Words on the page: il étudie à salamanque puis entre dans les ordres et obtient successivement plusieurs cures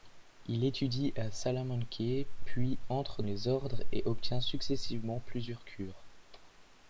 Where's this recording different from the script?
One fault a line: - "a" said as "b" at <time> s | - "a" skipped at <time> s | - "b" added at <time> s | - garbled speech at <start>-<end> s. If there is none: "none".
- "dans" skipped at 3.2 s